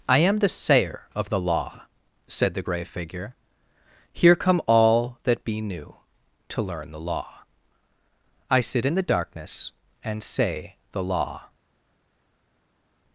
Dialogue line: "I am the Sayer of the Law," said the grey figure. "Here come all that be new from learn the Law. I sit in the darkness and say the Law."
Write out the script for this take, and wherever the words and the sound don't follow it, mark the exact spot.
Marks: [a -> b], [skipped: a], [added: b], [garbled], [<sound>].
"I am the Sayer of the Law," said the grey figure. "Here come all that be new [from -> to] learn the Law. I sit in the darkness and say the Law."